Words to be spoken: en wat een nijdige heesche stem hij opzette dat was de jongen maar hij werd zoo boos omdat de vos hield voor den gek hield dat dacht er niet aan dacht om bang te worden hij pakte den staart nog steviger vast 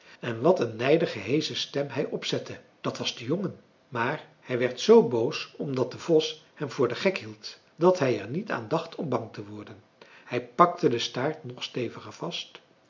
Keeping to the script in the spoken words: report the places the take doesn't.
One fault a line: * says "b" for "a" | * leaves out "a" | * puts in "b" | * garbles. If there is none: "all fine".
* says "hem" for "hield"
* says "hij" for "dacht"